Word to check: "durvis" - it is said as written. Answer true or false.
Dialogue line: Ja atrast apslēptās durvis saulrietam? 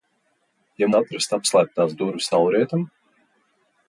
true